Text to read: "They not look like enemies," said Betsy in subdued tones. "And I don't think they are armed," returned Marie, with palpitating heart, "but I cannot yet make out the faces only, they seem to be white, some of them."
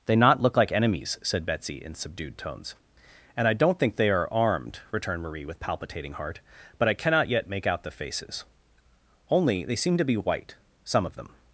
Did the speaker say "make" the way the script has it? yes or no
yes